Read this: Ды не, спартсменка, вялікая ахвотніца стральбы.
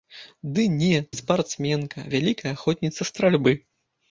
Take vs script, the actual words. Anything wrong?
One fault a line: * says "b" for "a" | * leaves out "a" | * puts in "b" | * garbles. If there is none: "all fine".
all fine